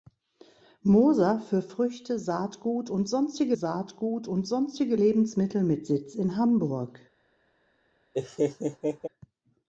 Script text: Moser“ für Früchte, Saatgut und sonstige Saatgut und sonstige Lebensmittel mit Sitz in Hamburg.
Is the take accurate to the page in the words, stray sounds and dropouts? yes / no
no